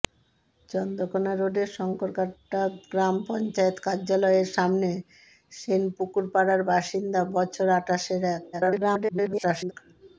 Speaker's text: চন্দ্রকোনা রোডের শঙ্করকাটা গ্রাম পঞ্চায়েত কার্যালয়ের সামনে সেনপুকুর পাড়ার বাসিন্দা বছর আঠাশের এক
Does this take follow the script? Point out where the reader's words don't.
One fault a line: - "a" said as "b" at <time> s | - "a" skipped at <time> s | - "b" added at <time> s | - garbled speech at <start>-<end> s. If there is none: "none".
- garbled speech at 8.5-9.7 s